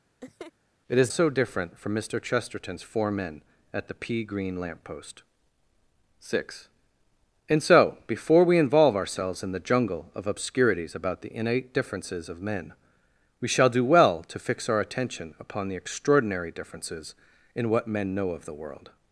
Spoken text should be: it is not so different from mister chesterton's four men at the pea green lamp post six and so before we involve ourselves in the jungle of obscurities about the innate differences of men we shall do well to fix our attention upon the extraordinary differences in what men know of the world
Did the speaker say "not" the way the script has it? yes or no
no